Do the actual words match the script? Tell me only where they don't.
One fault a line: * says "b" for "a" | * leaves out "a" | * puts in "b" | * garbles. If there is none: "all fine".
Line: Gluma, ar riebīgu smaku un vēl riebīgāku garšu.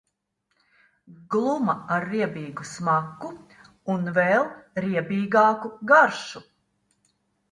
all fine